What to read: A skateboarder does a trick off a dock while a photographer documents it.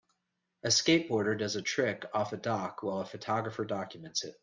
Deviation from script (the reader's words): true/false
false